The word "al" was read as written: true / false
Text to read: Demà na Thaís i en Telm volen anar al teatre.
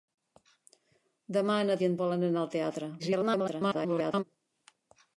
true